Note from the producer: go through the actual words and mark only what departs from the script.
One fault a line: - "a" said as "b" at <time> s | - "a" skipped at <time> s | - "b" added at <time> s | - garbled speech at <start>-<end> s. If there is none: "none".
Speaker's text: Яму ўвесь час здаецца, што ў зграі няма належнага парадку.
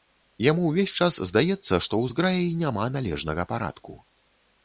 none